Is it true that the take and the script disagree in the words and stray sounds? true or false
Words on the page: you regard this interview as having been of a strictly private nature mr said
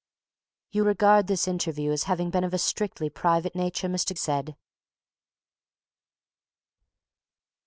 false